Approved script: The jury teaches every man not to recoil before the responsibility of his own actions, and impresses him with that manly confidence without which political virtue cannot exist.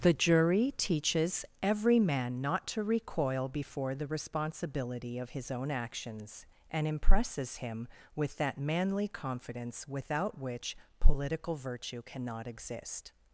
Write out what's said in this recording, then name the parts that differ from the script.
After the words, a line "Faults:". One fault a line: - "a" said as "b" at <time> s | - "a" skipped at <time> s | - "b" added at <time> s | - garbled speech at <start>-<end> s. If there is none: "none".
The jury teaches every man not to recoil before the responsibility of his own actions, and impresses him with that manly confidence without which political virtue cannot exist.
Faults:
none